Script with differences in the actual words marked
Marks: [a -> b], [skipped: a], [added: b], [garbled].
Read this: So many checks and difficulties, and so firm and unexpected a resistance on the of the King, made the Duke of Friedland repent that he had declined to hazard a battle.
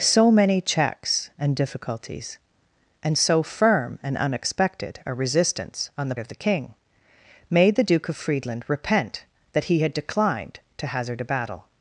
So many checks and difficulties, and so firm and unexpected a resistance on the of the King, made the Duke of Friedland repent that he had declined to hazard a battle.